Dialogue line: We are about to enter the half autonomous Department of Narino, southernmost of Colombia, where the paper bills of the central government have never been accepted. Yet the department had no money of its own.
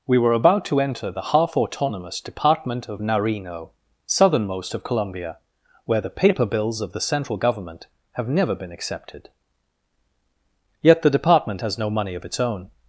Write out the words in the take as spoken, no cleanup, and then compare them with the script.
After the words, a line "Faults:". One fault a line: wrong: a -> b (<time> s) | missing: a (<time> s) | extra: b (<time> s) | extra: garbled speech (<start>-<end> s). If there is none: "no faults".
We were about to enter the half autonomous Department of Narino, southernmost of Colombia, where the paper bills of the central government have never been accepted. Yet the department has no money of its own.
Faults:
wrong: are -> were (0.2 s)
wrong: had -> has (11.6 s)